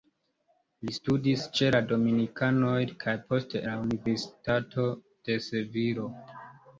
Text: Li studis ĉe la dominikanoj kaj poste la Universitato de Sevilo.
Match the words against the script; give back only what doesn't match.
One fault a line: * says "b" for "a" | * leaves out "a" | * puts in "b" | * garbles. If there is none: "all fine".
all fine